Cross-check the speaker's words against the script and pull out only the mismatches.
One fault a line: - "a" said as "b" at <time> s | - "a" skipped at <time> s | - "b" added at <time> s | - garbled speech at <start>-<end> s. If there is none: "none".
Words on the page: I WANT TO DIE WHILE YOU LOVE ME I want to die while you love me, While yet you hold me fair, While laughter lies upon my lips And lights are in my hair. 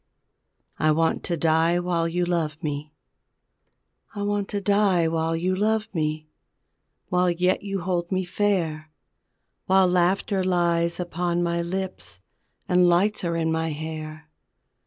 none